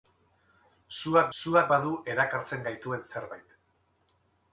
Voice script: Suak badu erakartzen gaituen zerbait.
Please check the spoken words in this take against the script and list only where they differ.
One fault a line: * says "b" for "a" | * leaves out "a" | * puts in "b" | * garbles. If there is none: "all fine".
* puts in "suak"